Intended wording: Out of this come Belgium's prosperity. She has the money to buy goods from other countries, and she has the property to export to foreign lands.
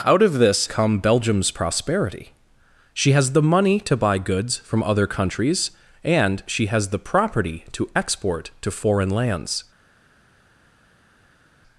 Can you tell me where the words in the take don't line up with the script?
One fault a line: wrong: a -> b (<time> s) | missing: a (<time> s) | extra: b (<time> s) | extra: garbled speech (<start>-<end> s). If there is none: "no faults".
no faults